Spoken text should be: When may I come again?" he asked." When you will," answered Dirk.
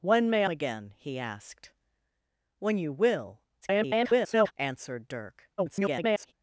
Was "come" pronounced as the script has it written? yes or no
no